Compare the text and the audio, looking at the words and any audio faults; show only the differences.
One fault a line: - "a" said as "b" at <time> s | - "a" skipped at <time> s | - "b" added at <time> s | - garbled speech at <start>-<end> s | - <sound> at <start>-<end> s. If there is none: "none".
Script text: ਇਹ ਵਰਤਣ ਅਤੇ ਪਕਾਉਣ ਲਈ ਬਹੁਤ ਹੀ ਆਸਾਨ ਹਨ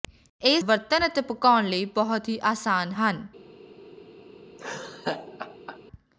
- laugh at 4.6-5.8 s